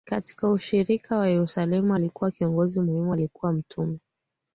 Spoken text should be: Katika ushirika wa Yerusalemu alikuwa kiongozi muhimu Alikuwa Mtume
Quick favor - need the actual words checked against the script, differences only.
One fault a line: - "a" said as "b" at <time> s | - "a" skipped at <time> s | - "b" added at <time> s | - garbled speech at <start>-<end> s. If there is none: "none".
none